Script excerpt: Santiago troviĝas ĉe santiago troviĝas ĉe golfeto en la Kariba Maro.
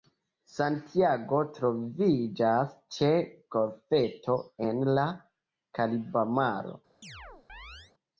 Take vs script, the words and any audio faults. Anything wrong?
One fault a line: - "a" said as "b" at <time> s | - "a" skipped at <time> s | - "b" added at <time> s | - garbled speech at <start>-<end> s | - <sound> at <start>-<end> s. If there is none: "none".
- "santiago troviĝas ĉe" skipped at 3.1 s
- chirp at 7.0-7.9 s